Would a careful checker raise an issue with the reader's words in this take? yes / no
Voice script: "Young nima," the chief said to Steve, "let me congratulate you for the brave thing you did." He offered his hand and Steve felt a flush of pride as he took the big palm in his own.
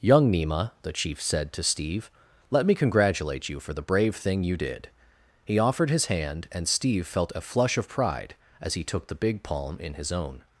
no